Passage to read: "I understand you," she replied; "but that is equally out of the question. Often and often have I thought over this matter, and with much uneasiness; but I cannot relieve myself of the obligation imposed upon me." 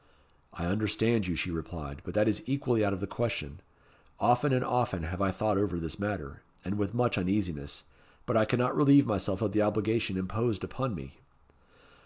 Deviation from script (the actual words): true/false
false